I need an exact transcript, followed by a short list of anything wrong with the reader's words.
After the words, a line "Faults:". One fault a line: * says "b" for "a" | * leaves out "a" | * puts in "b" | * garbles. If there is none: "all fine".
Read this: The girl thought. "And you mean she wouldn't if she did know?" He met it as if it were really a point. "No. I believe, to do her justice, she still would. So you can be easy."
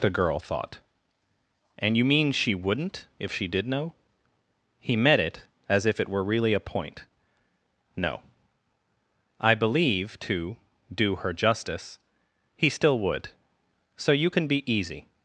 The girl thought. "And you mean she wouldn't if she did know?" He met it as if it were really a point. "No. I believe, to do her justice, he still would. So you can be easy."
Faults:
* says "he" for "she"